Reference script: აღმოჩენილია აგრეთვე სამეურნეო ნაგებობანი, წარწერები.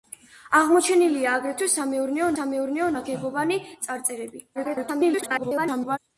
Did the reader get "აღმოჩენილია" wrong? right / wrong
right